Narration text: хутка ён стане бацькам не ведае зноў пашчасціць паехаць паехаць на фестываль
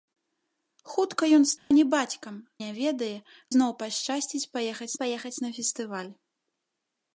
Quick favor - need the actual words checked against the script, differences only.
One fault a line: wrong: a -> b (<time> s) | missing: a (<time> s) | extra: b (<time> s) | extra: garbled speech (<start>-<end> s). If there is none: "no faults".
no faults